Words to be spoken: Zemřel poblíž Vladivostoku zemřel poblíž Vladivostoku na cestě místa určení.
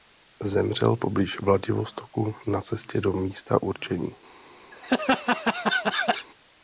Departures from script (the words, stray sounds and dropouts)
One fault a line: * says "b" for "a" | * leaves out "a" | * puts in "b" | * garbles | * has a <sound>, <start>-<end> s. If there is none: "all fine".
* leaves out "zemřel poblíž Vladivostoku"
* puts in "do"
* has a laugh, 4.7-6.3 s